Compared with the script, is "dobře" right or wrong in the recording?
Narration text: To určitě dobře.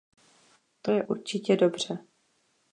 right